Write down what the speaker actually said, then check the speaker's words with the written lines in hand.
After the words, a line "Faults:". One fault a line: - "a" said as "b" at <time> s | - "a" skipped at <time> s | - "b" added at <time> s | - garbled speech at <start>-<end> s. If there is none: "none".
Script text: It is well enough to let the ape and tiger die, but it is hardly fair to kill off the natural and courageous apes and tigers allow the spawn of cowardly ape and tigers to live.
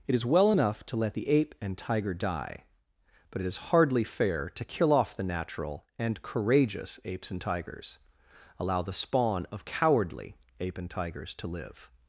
It is well enough to let the ape and tiger die, but it is hardly fair to kill off the natural and courageous apes and tigers allow the spawn of cowardly ape and tigers to live.
Faults:
none